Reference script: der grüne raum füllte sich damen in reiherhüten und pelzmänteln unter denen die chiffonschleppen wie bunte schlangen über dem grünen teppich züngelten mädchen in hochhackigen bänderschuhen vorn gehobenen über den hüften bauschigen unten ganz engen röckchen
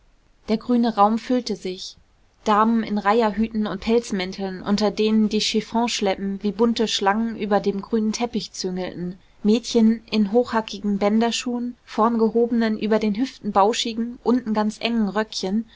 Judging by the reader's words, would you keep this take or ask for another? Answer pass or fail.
pass